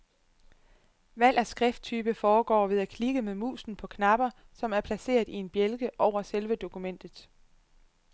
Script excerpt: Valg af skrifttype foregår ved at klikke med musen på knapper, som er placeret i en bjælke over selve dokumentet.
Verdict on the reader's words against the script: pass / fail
pass